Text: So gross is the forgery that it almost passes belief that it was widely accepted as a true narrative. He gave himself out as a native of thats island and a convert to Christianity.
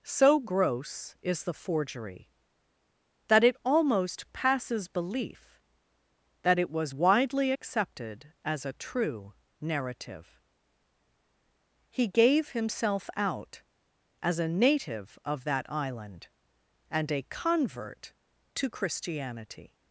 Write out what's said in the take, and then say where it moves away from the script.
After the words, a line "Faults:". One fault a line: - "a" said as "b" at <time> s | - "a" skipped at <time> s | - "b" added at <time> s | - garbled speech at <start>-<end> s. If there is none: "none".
So gross is the forgery that it almost passes belief that it was widely accepted as a true narrative. He gave himself out as a native of that island and a convert to Christianity.
Faults:
- "thats" said as "that" at 15.4 s